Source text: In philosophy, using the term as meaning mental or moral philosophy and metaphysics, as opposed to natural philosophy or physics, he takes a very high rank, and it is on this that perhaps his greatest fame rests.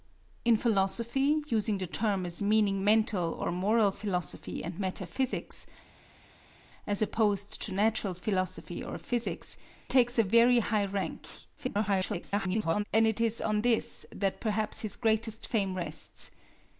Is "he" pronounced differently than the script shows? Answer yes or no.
yes